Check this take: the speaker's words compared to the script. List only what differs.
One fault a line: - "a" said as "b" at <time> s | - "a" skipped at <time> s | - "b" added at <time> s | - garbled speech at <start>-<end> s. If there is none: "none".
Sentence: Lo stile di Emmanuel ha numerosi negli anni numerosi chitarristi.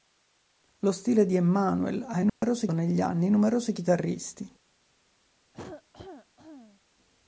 none